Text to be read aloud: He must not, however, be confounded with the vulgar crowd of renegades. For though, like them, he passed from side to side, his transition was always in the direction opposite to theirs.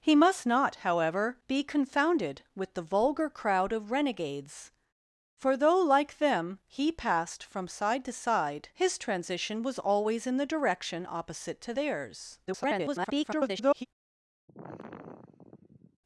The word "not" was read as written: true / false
true